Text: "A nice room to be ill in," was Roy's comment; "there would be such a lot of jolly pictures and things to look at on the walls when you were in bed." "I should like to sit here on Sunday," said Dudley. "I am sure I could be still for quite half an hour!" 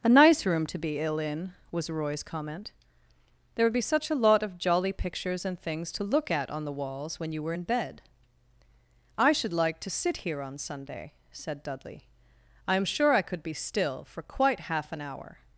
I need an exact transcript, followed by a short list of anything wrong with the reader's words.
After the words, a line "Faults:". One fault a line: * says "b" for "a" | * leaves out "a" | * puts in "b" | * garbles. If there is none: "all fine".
"A nice room to be ill in," was Roy's comment; "there would be such a lot of jolly pictures and things to look at on the walls when you were in bed." "I should like to sit here on Sunday," said Dudley. "I am sure I could be still for quite half an hour!"
Faults:
all fine